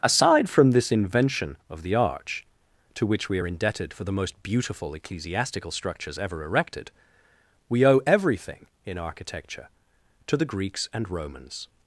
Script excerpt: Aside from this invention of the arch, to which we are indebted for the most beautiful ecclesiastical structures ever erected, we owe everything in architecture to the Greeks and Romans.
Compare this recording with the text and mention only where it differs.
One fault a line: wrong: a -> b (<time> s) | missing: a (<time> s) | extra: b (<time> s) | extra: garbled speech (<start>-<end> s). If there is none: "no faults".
no faults